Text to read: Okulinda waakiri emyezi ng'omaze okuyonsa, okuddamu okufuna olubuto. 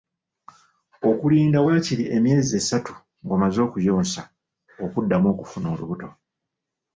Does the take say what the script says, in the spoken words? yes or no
no